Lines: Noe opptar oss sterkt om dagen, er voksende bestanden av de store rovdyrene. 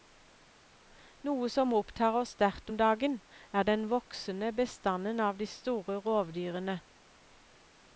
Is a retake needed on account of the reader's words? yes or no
yes